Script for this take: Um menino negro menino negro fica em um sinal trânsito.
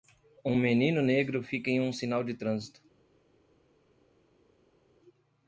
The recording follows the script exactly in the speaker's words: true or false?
false